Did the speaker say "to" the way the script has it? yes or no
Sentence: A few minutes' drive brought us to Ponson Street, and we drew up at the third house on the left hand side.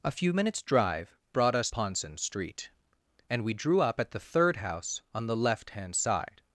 no